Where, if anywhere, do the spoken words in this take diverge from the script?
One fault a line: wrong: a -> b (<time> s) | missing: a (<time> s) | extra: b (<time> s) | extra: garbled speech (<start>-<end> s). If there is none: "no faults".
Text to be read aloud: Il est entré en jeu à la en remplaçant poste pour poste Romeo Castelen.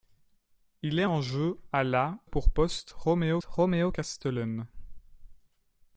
missing: entré (1.1 s)
wrong: en remplaçant -> pour (2.2 s)
wrong: pour poste -> Romeo (2.9 s)